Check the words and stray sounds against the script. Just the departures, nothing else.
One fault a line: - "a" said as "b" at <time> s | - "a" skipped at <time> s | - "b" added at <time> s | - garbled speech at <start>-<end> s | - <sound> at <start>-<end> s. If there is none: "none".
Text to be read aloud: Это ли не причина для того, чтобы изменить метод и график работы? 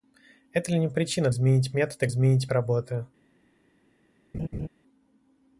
- "для того чтобы" skipped at 1.3 s
- "график" said as "изменить" at 2.1 s
- laugh at 4.3-4.7 s